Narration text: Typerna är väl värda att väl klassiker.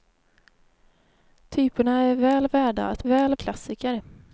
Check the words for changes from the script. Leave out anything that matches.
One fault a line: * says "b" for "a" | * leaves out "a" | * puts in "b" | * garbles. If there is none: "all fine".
all fine